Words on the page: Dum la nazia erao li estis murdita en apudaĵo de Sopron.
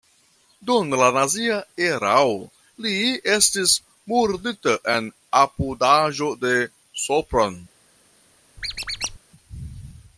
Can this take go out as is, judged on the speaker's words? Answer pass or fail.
pass